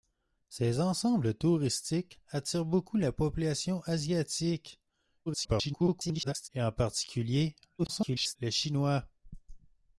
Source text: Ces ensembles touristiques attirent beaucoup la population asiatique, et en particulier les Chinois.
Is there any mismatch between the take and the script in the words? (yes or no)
yes